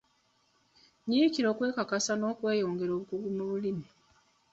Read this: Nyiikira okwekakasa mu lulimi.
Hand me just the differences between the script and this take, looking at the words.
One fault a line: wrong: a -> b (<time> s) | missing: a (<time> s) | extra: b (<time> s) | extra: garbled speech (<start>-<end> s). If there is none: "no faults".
extra: n'okweyongera obukugu (2.2 s)